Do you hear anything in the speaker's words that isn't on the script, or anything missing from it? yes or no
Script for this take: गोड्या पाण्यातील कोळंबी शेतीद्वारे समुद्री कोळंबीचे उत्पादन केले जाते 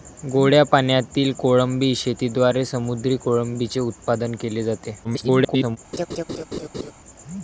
yes